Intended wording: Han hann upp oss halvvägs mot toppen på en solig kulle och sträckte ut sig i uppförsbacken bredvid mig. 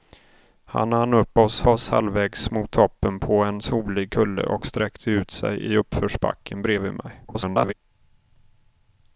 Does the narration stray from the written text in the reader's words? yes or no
yes